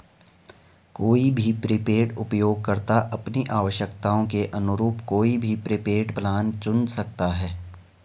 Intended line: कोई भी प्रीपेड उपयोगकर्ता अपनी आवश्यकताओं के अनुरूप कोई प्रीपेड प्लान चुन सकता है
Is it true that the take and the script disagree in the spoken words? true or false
true